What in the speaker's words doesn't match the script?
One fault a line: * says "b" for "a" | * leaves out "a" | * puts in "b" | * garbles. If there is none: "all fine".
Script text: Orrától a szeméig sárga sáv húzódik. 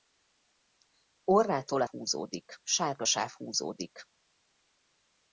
* says "húzódik" for "szeméig"